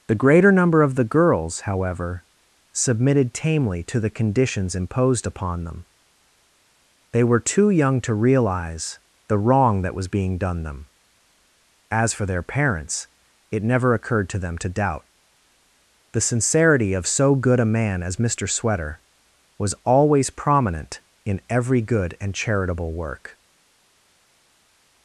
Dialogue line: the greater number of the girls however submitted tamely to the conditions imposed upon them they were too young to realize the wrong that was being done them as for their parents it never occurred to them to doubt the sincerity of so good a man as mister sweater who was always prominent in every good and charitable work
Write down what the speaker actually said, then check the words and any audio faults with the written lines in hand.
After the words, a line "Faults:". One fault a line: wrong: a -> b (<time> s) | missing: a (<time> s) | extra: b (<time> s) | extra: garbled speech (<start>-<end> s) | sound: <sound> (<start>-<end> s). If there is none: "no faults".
the greater number of the girls however submitted tamely to the conditions imposed upon them they were too young to realize the wrong that was being done them as for their parents it never occurred to them to doubt the sincerity of so good a man as mister sweater was always prominent in every good and charitable work
Faults:
missing: who (19.0 s)